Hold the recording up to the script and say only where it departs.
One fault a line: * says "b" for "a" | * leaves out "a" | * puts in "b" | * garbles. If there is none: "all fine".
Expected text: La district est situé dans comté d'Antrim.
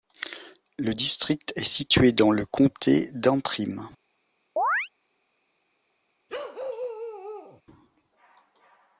* says "Le" for "La"
* puts in "le"